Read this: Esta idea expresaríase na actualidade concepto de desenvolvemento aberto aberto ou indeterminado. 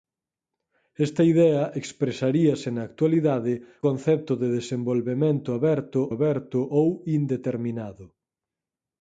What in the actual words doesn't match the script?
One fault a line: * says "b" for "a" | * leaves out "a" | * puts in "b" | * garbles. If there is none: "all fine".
all fine